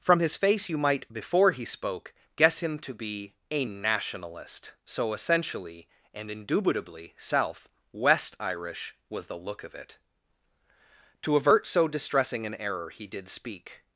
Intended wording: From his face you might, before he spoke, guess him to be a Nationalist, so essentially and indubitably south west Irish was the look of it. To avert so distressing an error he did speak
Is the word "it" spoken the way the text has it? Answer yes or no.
yes